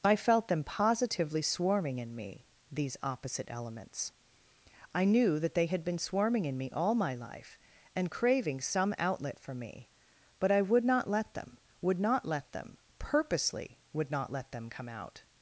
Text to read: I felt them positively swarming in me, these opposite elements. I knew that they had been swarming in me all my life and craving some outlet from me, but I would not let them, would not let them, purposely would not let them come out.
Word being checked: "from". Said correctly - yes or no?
no